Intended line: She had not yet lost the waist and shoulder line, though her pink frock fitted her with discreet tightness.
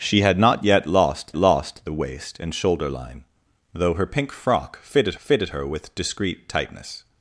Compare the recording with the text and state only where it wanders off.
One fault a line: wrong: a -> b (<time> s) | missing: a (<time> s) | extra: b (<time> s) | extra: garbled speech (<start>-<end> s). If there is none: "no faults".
extra: lost (1.4 s)
extra: fitted (5.2 s)